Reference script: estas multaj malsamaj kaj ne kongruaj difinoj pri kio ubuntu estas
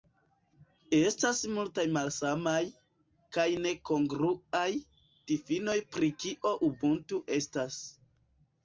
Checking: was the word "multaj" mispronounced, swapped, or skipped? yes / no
no